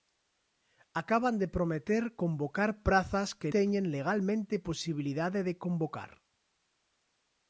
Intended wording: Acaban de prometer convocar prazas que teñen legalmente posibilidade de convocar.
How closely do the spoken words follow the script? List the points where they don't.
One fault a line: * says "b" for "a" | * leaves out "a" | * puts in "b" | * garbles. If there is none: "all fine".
all fine